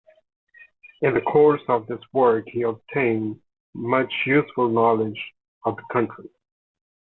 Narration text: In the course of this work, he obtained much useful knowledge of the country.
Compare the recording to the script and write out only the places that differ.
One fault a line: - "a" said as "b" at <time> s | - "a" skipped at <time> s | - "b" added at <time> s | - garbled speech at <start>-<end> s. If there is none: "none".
none